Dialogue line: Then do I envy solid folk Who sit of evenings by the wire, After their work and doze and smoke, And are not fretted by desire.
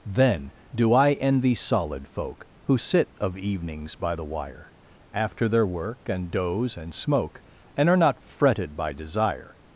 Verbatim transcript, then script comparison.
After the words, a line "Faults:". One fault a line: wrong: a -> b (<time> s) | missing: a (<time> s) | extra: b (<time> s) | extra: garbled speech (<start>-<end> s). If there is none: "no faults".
Then do I envy solid folk Who sit of evenings by the wire, After their work and doze and smoke, And are not fretted by desire.
Faults:
no faults